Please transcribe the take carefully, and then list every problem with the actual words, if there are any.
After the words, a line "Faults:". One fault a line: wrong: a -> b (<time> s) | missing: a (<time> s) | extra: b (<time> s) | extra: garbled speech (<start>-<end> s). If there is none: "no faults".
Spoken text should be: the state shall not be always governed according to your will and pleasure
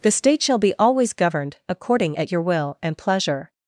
the state shall be always governed according at your will and pleasure
Faults:
missing: not (0.6 s)
wrong: to -> at (2.1 s)